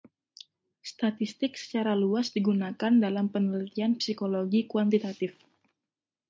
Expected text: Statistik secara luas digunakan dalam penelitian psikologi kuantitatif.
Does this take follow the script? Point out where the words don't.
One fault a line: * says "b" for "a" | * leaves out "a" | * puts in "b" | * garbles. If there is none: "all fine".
all fine